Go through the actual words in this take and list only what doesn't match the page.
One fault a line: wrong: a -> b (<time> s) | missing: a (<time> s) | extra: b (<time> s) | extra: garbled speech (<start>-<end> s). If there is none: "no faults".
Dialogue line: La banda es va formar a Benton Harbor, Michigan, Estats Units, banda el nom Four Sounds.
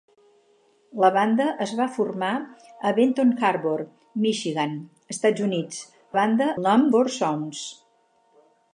no faults